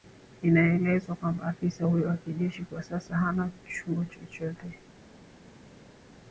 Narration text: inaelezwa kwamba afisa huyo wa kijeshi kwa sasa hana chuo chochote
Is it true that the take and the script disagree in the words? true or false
false